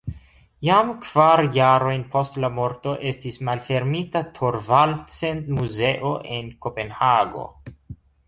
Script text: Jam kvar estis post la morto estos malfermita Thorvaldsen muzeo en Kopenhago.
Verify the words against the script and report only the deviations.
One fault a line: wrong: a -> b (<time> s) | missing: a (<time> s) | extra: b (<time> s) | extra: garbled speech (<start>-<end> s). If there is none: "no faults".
wrong: estis -> jarojn (1.6 s)
wrong: estos -> estis (3.1 s)